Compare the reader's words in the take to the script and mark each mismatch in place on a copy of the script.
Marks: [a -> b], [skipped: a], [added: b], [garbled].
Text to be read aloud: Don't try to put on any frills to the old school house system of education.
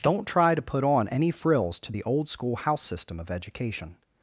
Don't try to put on any frills to the old school house system of education.